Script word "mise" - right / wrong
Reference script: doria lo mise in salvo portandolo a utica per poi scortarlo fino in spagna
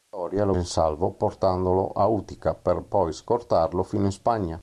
wrong